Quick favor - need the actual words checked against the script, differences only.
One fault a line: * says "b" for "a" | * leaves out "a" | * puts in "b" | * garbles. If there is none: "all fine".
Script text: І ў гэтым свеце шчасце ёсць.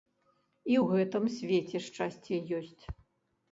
all fine